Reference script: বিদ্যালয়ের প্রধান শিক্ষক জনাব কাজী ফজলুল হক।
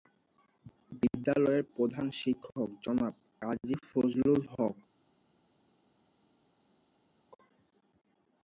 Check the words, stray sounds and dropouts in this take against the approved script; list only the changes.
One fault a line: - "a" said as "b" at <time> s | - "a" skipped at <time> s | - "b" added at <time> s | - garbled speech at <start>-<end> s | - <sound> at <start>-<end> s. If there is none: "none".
none